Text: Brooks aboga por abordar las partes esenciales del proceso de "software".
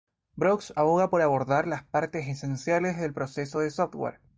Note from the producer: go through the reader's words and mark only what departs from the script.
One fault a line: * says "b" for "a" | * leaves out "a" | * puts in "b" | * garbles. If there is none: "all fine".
all fine